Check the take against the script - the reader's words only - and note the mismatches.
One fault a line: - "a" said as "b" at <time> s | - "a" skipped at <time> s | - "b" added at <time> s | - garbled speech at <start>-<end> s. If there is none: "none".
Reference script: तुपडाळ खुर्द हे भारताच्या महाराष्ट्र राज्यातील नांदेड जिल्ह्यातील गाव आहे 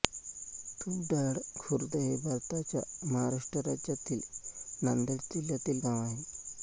none